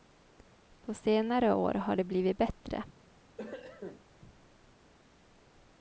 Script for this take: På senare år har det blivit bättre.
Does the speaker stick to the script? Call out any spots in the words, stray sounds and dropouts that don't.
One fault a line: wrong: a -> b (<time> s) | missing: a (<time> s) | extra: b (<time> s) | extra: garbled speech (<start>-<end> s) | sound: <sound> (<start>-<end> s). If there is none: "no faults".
sound: cough (3.4-4.0 s)